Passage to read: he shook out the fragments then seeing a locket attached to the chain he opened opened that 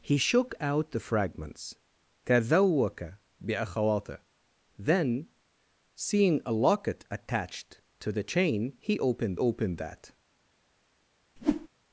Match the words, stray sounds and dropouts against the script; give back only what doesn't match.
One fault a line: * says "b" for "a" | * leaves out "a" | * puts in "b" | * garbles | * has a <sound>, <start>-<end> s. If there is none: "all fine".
* has a whoosh, 11.4-11.7 s